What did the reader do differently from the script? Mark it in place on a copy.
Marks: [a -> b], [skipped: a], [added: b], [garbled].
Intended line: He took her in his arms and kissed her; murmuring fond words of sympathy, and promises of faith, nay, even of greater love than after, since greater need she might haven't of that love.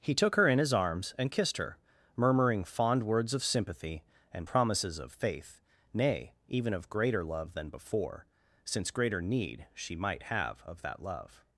He took her in his arms and kissed her; murmuring fond words of sympathy, and promises of faith, nay, even of greater love than [after, -> before] since greater need she might [haven't -> have] of that love.